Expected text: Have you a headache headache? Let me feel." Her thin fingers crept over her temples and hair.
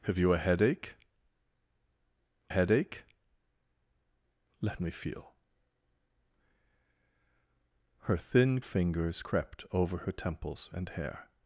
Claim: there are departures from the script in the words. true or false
false